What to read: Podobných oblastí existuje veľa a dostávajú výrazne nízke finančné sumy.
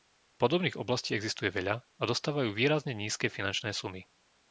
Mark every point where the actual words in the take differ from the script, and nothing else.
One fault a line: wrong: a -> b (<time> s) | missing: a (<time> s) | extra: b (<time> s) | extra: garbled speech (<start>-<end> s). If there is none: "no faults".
no faults